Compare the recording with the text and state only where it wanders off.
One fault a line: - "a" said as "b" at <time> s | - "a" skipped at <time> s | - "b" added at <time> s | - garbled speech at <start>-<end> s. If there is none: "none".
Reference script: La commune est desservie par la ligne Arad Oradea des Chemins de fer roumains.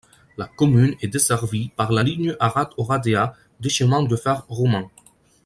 none